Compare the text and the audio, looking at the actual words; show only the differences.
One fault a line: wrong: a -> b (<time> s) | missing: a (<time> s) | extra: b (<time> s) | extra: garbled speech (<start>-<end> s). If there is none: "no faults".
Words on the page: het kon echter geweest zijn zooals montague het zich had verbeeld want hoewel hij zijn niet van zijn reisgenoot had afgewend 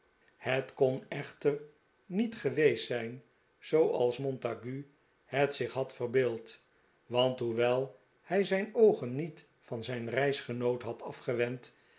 extra: niet (2.0 s)
extra: oogen (8.7 s)